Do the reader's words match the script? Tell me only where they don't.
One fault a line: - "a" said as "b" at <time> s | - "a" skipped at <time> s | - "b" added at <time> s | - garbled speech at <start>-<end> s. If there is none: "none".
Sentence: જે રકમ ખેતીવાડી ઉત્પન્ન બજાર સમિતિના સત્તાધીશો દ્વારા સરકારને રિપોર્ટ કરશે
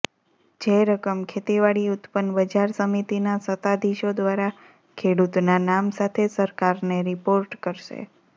- "ખેડૂતના નામ સાથે" added at 5.0 s